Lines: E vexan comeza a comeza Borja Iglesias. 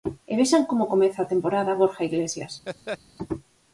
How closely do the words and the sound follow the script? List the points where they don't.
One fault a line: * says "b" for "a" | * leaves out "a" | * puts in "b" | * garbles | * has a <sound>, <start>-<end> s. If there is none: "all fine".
* puts in "como"
* says "temporada" for "comeza"
* has a laugh, 2.7-3.0 s